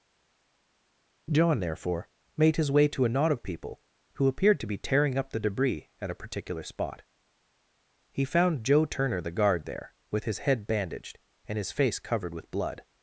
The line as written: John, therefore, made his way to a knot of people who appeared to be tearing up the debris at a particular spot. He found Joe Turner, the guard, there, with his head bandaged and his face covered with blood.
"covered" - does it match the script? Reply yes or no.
yes